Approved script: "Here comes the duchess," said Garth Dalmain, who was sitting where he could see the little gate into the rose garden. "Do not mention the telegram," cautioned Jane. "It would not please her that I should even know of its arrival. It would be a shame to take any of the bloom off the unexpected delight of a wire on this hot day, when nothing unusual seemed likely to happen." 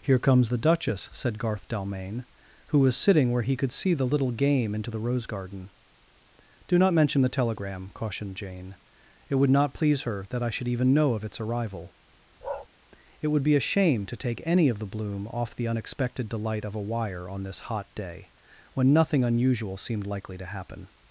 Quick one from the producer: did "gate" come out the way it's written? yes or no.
no